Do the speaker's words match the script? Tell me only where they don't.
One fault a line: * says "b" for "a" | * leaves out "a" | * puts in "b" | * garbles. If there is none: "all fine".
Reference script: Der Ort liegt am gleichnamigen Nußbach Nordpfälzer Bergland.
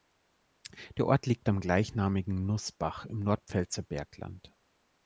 * puts in "im"